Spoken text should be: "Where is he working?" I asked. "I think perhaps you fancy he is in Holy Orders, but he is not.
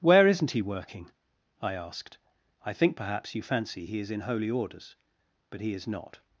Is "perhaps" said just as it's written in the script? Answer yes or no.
yes